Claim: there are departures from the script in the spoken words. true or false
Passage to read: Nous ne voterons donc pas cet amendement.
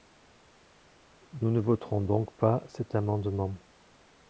false